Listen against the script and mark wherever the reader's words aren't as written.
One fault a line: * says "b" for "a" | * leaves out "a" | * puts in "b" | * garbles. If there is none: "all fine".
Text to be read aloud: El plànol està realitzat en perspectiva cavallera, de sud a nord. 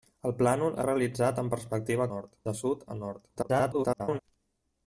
* leaves out "està"
* says "nord" for "cavallera"
* garbles